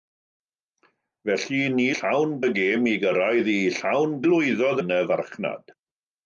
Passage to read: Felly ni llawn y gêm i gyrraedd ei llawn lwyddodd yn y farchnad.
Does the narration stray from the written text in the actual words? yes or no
no